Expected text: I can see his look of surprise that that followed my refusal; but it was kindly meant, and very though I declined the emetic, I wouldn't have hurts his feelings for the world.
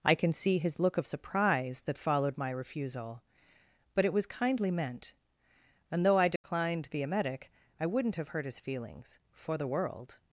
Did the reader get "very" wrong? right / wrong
wrong